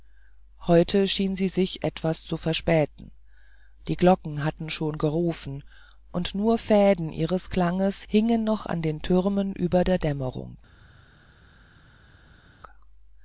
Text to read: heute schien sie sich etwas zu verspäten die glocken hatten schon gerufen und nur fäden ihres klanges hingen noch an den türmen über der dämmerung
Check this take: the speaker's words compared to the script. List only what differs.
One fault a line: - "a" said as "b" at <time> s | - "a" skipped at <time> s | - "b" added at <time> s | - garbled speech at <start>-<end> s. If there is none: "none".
none